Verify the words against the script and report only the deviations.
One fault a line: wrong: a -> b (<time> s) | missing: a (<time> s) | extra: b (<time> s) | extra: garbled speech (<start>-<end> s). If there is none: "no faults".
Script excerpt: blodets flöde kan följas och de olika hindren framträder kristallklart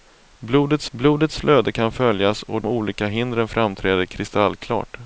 extra: blodets (0.9 s)
missing: de (2.6 s)